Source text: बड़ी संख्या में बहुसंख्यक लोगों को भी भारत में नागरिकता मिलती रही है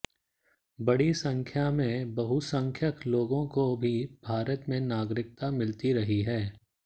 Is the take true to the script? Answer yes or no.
yes